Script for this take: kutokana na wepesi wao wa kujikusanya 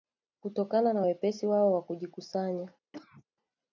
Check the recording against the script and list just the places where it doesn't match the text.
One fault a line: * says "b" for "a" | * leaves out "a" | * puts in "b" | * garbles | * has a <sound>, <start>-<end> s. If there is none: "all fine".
* has a cough, 2.9-3.2 s